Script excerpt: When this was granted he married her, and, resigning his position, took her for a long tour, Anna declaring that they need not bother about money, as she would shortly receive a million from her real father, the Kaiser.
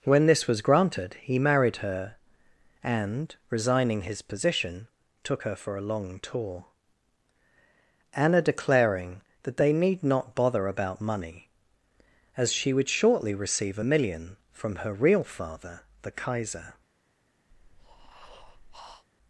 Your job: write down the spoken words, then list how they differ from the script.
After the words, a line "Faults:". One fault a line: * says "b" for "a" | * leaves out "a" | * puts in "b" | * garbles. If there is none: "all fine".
When this was granted he married her, and, resigning his position, took her for a long tour, Anna declaring that they need not bother about money, as she would shortly receive a million from her real father, the Kaiser.
Faults:
all fine